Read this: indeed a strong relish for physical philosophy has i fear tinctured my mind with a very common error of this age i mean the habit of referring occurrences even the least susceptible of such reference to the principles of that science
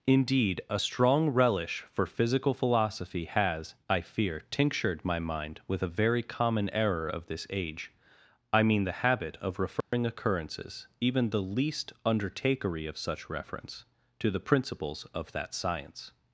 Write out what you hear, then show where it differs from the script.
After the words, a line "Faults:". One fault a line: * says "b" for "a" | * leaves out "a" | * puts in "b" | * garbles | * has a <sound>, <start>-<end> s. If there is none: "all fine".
indeed a strong relish for physical philosophy has i fear tinctured my mind with a very common error of this age i mean the habit of referring occurrences even the least undertakery of such reference to the principles of that science
Faults:
* has a dropout, 9.8-9.9 s
* says "undertakery" for "susceptible"